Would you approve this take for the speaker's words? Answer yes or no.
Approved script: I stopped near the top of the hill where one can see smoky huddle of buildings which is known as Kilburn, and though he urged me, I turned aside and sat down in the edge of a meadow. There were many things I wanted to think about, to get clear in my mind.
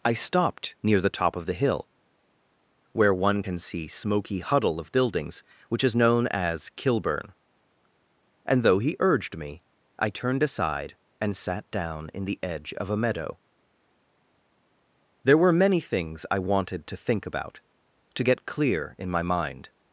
yes